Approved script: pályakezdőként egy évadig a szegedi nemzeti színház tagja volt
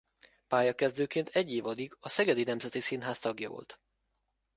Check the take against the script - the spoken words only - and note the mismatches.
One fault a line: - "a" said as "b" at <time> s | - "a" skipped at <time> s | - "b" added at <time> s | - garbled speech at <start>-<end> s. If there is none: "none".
none